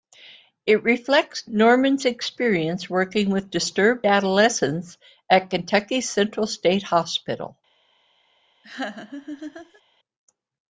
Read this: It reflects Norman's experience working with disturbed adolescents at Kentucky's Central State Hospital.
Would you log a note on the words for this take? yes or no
no